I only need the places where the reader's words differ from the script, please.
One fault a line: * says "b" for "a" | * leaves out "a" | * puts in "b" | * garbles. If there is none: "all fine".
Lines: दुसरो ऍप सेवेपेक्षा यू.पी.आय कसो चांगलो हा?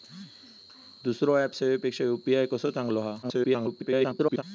* garbles